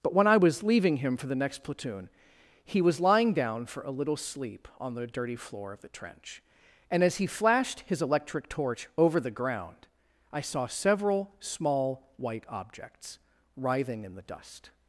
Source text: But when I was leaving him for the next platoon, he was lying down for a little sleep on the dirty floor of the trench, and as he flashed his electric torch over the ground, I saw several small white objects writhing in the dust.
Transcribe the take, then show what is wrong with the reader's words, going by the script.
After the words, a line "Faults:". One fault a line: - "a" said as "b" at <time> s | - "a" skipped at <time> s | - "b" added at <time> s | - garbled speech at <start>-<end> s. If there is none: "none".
But when I was leaving him for the next platoon, he was lying down for a little sleep on the dirty floor of the trench, and as he flashed his electric torch over the ground, I saw several small white objects writhing in the dust.
Faults:
none